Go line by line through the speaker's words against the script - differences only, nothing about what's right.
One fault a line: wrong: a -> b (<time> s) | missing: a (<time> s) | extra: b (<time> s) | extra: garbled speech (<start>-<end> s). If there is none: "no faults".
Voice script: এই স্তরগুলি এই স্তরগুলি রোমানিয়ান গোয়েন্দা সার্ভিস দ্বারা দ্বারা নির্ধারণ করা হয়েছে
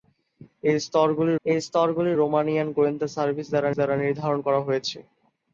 no faults